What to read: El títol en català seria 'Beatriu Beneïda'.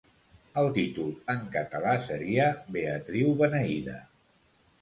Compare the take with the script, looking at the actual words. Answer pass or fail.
pass